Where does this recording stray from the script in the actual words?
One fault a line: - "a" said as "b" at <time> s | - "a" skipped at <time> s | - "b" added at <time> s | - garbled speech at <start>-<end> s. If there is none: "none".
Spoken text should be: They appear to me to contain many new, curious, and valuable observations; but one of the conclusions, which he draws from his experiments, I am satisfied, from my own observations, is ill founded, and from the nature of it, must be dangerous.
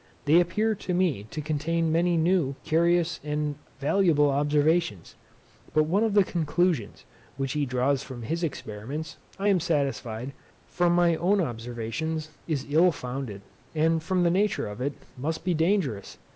none